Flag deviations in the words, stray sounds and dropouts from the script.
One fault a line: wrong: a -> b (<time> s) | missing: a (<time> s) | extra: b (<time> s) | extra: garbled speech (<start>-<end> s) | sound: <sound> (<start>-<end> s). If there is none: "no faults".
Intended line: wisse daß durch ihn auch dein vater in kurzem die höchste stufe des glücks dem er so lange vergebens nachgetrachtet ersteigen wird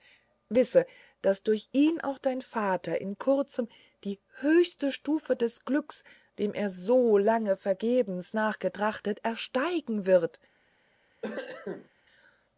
sound: cough (11.2-11.9 s)